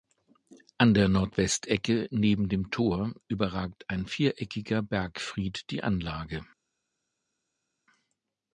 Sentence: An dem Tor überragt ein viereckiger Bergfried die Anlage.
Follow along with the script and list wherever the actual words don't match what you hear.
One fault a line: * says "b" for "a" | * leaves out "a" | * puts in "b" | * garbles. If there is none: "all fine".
* puts in "der Nordwestecke neben"